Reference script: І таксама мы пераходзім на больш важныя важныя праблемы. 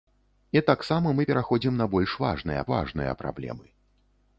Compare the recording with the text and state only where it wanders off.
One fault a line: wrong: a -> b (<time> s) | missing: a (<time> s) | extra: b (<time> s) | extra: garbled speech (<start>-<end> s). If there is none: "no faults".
no faults